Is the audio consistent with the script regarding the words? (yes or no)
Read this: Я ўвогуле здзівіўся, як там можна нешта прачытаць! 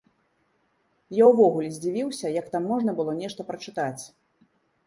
no